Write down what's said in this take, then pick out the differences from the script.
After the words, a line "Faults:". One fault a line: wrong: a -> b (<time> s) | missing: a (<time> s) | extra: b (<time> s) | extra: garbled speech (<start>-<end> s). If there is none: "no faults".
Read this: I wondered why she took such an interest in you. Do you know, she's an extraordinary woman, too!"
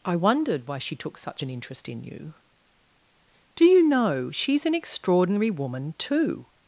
I wondered why she took such an interest in you. Do you know, she's an extraordinary woman, too!"
Faults:
no faults